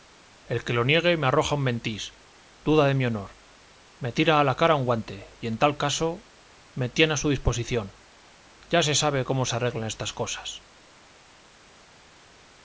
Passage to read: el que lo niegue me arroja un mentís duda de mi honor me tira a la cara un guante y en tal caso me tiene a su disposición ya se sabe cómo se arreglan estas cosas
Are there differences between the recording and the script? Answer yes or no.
no